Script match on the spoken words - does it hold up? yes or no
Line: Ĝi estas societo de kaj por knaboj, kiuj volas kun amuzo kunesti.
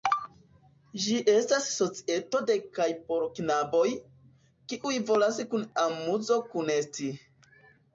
yes